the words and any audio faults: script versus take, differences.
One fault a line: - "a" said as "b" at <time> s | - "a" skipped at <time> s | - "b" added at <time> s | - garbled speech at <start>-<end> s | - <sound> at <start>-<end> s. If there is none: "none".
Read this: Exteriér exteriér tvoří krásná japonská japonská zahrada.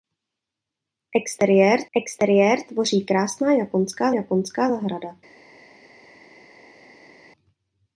none